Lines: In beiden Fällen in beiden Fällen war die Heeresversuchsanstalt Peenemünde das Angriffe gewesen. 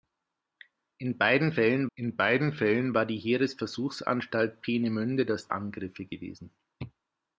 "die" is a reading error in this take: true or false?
false